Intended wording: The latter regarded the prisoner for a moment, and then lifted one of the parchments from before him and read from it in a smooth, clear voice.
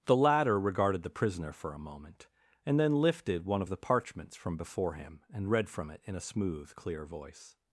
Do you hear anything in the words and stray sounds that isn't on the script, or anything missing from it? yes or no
no